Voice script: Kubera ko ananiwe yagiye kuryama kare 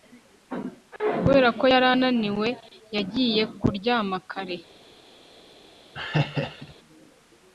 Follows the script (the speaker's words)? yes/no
no